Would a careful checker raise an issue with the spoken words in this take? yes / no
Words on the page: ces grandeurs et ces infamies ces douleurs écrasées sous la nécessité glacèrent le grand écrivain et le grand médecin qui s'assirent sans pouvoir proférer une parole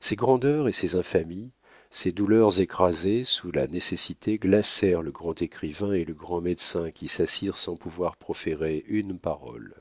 no